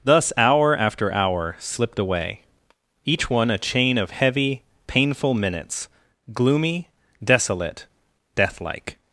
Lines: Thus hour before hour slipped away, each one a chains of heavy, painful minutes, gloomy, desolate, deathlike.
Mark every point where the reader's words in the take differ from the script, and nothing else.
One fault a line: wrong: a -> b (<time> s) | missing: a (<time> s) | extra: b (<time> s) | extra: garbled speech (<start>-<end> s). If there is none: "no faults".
wrong: before -> after (0.8 s)
wrong: chains -> chain (3.6 s)